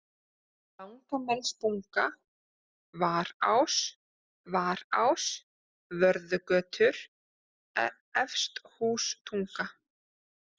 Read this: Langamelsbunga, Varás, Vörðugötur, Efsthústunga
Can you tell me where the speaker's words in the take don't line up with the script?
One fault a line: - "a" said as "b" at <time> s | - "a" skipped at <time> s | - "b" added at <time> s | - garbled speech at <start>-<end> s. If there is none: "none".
- "Varás" added at 4.5 s